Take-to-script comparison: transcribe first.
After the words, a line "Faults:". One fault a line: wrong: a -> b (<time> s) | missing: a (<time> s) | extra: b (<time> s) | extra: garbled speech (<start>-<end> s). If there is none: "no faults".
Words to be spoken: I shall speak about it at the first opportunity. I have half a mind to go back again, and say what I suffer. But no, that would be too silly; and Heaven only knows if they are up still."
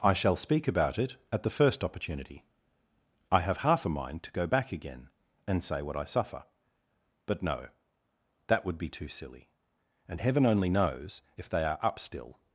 I shall speak about it at the first opportunity. I have half a mind to go back again, and say what I suffer. But no, that would be too silly; and Heaven only knows if they are up still."
Faults:
no faults